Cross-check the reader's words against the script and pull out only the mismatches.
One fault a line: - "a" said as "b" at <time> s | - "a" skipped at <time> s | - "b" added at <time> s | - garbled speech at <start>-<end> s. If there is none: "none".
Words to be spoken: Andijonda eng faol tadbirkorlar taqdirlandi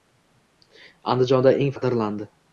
- "faol tadbirkorlar" skipped at 1.7 s